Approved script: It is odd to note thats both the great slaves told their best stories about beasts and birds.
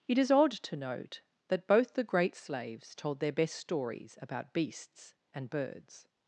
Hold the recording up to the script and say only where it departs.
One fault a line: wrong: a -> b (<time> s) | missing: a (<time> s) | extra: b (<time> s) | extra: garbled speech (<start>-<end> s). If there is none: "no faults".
wrong: thats -> that (1.5 s)